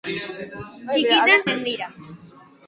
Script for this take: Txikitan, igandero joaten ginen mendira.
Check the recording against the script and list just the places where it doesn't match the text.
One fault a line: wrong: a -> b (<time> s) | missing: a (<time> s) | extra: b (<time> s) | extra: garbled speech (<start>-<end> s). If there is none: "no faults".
missing: igandero joaten ginen (1.4 s)